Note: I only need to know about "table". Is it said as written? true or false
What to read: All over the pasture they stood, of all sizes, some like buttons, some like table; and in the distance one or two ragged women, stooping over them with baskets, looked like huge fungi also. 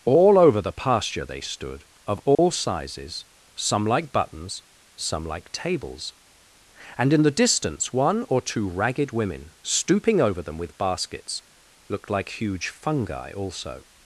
false